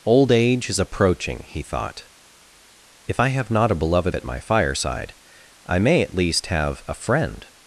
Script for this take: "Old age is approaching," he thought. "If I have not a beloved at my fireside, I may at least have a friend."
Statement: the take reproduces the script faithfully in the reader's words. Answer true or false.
true